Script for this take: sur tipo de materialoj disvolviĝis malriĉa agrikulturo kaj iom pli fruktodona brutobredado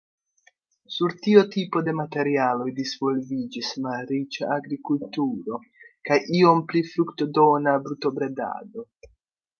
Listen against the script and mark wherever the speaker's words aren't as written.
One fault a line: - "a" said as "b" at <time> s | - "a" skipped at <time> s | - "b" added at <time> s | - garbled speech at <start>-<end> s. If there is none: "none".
- "tiu" added at 1.2 s